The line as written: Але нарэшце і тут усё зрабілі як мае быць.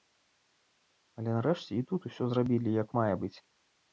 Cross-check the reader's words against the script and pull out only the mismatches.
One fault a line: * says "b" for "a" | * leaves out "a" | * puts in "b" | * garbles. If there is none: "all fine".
all fine